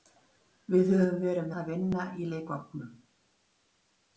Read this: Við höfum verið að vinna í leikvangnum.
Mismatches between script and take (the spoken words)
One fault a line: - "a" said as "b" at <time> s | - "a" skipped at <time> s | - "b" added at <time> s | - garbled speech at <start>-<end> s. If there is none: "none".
none